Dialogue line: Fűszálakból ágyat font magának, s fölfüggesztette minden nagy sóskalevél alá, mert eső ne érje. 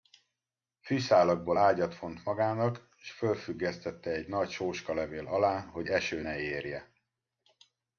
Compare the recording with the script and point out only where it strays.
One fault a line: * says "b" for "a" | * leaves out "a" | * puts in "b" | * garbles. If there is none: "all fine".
* says "egy" for "minden"
* says "hogy" for "mert"